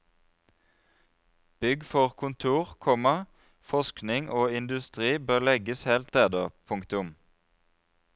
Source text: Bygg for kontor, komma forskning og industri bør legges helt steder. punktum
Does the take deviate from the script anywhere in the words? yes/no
no